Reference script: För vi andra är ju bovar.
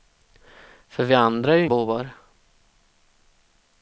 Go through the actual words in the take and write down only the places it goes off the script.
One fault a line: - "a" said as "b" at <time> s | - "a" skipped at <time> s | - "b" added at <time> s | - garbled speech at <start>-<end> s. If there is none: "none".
none